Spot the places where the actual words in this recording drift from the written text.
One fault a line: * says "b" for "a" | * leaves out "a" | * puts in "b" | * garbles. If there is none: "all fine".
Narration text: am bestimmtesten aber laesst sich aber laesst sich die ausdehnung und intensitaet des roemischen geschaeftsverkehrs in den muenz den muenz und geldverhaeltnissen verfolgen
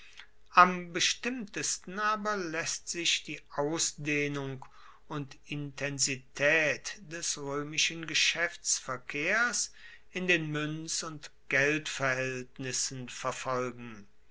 * leaves out "aber laesst sich"
* leaves out "den muenz"